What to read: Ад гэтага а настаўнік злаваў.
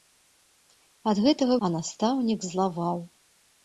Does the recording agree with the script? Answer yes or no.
yes